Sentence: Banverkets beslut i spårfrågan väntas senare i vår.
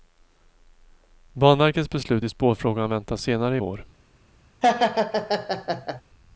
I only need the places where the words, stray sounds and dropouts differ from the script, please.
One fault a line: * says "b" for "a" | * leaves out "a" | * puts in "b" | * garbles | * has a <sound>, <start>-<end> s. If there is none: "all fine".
* has a laugh, 4.6-6.0 s